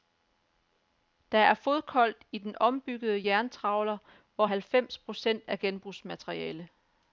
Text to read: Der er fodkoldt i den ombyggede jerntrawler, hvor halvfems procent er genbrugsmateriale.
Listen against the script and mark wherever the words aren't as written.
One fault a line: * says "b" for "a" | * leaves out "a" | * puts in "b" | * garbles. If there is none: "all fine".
all fine